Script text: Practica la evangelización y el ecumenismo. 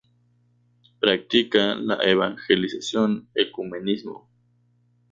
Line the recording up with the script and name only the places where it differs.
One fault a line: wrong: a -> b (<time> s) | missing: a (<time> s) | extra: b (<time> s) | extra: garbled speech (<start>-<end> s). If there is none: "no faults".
missing: y el (3.3 s)